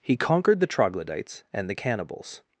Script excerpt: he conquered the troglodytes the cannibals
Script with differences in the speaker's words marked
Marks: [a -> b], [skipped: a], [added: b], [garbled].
he conquered the troglodytes [added: and] the cannibals